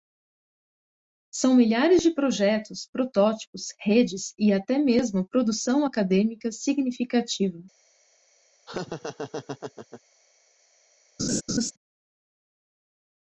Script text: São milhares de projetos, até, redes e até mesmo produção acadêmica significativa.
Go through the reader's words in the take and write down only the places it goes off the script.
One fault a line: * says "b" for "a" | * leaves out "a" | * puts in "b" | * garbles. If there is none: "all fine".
* says "protótipos" for "até"